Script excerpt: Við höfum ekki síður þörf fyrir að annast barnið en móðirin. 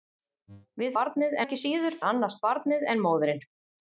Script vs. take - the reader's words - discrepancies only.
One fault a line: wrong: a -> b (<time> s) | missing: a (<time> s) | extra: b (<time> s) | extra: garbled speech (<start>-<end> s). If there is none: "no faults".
wrong: höfum -> barnið (1.0 s)
missing: þörf fyrir (2.0 s)